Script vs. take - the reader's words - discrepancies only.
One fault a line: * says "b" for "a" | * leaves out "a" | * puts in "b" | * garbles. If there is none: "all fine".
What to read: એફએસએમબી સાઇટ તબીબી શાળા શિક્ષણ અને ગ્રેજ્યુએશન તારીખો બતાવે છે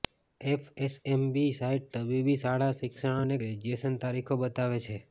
all fine